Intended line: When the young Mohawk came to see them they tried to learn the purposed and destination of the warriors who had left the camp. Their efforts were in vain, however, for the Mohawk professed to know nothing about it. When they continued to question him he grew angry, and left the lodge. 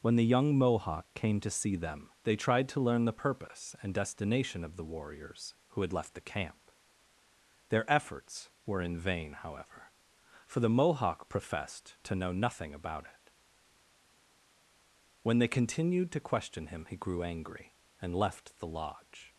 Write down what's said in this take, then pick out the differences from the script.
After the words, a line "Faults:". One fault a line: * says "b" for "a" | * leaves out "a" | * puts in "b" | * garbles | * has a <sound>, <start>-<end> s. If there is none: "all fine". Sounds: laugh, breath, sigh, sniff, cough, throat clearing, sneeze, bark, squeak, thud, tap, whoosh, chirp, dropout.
When the young Mohawk came to see them they tried to learn the purpose and destination of the warriors who had left the camp. Their efforts were in vain, however, for the Mohawk professed to know nothing about it. When they continued to question him he grew angry, and left the lodge.
Faults:
* says "purpose" for "purposed"